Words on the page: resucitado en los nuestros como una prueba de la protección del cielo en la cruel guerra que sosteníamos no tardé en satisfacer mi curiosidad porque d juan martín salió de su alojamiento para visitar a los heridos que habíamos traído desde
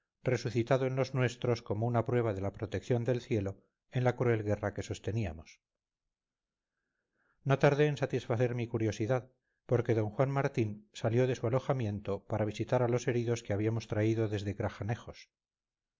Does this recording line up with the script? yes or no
yes